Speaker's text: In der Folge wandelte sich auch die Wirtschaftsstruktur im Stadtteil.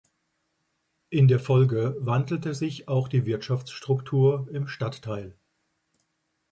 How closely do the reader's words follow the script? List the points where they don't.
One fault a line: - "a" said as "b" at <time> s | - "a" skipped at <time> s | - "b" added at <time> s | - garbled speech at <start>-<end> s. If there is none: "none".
none